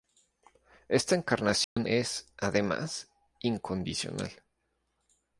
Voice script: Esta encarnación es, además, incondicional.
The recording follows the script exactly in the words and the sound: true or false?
false